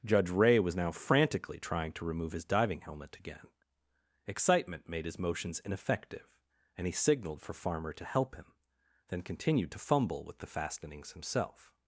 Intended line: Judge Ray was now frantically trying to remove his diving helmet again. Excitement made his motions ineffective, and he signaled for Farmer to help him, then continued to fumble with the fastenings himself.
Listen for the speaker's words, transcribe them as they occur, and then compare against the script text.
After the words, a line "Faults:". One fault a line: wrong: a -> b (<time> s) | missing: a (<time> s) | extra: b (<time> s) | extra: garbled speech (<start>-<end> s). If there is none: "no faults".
Judge Ray was now frantically trying to remove his diving helmet again. Excitement made his motions ineffective, and he signaled for Farmer to help him, then continued to fumble with the fastenings himself.
Faults:
no faults